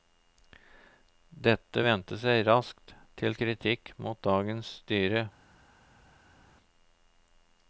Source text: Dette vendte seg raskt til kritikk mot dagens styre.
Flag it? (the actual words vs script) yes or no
no